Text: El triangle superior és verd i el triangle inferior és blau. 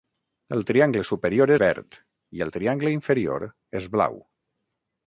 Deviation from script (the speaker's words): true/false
true